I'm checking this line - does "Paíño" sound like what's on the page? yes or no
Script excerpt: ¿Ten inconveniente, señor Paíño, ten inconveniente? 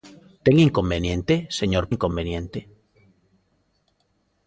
no